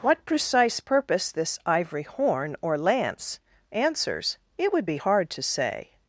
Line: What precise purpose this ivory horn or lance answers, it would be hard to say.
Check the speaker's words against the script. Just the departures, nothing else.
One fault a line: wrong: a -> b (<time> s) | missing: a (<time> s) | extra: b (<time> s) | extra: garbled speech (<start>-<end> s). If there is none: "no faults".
no faults